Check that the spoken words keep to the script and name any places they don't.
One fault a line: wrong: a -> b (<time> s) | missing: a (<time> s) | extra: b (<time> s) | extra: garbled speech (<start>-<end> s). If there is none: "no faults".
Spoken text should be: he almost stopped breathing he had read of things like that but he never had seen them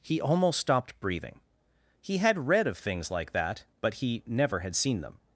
no faults